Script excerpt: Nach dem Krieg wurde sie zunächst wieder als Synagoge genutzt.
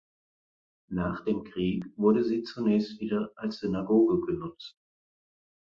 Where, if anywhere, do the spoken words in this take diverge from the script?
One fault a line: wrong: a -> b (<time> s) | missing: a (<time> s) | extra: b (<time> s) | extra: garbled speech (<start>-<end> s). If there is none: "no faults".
no faults